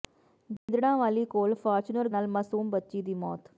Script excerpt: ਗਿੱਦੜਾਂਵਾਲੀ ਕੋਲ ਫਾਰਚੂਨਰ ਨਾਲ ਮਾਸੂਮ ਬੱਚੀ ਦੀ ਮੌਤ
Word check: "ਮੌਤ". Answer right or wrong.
right